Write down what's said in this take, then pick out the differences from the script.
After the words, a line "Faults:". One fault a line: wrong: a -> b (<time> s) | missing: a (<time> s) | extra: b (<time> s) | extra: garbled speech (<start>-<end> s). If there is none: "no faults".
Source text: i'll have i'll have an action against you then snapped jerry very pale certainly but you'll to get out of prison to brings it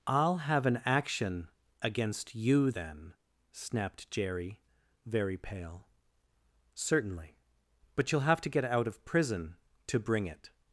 i'll have an action against you then snapped jerry very pale certainly but you'll have to get out of prison to bring it
Faults:
missing: i'll have (0.7 s)
extra: have (8.2 s)
wrong: brings -> bring (10.0 s)